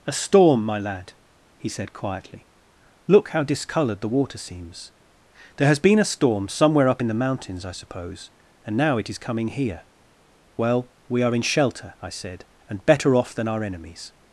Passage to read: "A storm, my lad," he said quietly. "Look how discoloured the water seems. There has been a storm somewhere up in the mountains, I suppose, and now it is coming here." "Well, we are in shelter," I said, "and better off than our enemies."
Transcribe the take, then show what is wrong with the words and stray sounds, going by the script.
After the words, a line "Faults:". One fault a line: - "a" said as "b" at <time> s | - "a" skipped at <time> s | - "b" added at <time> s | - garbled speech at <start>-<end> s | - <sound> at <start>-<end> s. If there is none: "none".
"A storm, my lad," he said quietly. "Look how discoloured the water seems. There has been a storm somewhere up in the mountains, I suppose, and now it is coming here." "Well, we are in shelter," I said, "and better off than our enemies."
Faults:
none